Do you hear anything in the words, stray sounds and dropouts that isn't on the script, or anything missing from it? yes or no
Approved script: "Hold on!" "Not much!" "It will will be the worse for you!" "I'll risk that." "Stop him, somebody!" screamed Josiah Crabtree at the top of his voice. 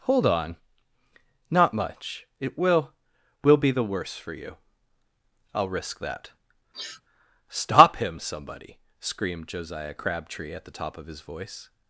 yes